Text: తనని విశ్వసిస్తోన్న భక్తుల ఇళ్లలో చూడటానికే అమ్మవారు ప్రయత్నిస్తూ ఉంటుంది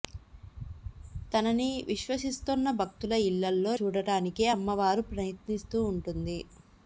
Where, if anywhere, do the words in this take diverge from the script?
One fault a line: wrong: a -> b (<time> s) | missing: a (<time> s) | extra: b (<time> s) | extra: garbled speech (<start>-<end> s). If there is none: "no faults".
no faults